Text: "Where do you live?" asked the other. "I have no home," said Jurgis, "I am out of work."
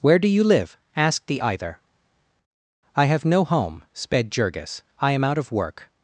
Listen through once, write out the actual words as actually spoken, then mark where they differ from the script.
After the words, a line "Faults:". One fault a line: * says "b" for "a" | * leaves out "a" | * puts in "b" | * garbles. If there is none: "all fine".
"Where do you live?" asked the either. "I have no home," sped Jurgis, "I am out of work."
Faults:
* says "either" for "other"
* says "sped" for "said"